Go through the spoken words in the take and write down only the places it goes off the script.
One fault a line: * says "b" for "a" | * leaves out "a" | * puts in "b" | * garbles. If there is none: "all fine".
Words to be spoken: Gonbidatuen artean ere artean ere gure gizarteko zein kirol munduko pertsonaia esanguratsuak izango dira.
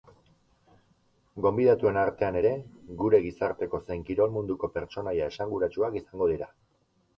* leaves out "artean ere"